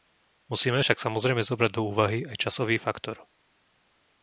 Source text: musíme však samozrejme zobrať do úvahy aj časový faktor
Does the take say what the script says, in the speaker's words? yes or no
yes